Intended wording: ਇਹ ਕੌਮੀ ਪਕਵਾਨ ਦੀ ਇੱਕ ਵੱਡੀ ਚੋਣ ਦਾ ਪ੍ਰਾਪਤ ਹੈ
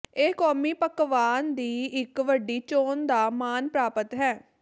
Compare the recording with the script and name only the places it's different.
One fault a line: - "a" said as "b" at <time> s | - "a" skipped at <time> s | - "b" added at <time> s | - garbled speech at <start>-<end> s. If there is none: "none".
- "ਮਾਣ" added at 3.3 s